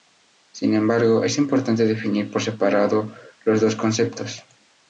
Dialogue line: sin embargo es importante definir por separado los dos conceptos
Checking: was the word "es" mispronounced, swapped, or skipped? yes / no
no